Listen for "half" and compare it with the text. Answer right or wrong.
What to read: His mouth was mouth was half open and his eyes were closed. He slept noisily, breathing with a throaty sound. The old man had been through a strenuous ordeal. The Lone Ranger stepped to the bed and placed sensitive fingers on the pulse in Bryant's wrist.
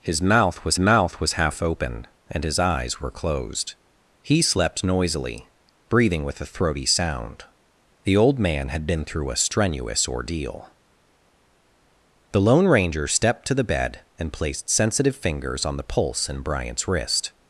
right